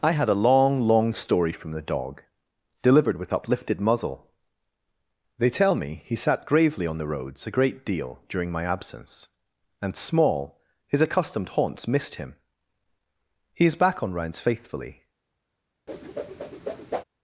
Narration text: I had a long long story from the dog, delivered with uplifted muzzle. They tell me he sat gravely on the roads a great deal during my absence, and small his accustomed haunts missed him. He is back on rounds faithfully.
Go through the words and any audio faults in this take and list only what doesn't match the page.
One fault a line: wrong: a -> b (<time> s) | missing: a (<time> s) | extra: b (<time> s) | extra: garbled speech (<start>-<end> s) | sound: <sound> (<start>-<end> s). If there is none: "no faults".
sound: whoosh (15.9-17.0 s)